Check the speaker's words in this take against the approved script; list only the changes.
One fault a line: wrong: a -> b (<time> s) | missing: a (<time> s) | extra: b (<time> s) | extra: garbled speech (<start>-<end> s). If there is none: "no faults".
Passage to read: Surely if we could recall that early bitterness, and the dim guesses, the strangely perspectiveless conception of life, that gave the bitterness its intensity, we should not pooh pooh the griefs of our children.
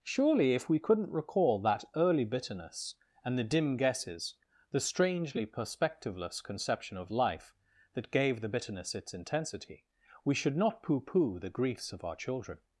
wrong: could -> couldn't (0.8 s)